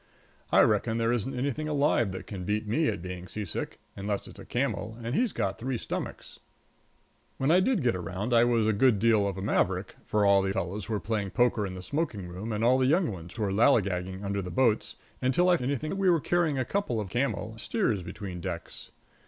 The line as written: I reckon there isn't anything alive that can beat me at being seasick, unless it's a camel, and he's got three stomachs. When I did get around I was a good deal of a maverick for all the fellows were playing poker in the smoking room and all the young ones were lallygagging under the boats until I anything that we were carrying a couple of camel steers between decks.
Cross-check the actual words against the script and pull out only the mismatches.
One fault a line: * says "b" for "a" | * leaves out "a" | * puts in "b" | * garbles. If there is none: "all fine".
all fine